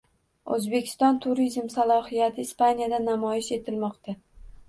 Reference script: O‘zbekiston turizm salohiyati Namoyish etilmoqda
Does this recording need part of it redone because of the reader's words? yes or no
yes